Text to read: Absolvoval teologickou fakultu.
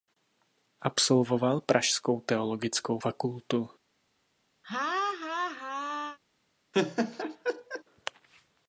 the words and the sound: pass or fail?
fail